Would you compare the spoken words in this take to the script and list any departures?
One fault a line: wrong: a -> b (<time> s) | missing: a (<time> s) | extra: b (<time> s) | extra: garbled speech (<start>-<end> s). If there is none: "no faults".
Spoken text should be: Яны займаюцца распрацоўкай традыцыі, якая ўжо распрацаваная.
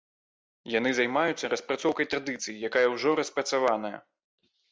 no faults